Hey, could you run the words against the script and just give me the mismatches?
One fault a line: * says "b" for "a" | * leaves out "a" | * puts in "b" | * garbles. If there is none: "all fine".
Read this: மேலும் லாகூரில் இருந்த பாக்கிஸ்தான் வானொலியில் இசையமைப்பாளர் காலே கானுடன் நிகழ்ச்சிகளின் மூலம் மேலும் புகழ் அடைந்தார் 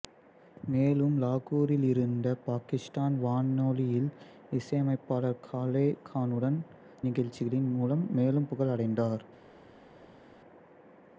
all fine